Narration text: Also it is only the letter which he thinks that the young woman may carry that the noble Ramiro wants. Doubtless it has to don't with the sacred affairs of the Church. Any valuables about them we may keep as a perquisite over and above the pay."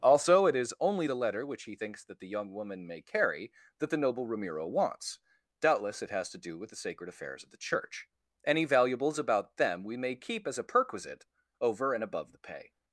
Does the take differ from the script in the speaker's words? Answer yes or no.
yes